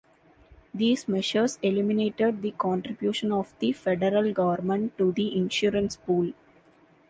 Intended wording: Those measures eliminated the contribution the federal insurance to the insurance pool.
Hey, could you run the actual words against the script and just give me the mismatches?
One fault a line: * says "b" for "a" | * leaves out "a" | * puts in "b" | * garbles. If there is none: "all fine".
* says "These" for "Those"
* puts in "of"
* says "government" for "insurance"